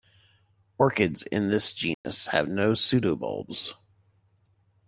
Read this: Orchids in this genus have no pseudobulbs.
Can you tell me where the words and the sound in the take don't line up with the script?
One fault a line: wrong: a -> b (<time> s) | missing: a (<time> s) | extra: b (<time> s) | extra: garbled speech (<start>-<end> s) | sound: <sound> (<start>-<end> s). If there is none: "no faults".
sound: dropout (1.9-2.0 s)